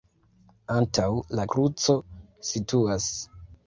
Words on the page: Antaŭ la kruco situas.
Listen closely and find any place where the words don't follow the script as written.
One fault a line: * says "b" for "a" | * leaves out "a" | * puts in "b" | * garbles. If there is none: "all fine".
all fine